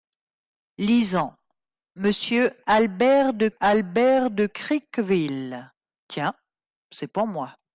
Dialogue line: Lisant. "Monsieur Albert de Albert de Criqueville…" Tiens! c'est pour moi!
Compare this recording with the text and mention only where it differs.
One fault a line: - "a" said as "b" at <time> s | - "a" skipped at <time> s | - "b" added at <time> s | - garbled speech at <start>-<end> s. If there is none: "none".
none